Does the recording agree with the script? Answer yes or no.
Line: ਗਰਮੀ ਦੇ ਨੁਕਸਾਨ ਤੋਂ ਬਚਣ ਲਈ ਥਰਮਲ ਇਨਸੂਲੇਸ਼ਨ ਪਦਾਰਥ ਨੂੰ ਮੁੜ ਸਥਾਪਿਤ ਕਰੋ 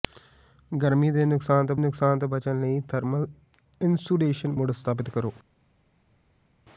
no